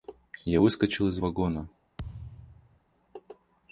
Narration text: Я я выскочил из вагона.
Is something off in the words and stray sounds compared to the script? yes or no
yes